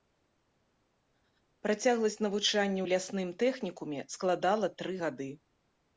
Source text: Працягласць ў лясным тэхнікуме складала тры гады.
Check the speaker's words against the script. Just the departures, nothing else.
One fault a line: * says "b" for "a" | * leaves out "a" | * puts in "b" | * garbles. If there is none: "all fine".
* puts in "навучання"